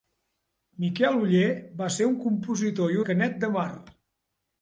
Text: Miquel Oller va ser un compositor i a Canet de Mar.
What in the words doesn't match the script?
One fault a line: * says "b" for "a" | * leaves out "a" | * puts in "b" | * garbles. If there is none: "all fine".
all fine